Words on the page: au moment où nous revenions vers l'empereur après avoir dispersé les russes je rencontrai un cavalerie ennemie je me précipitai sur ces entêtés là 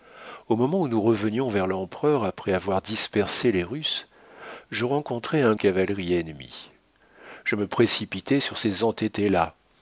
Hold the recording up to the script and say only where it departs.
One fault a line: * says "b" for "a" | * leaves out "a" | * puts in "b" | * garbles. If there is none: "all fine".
all fine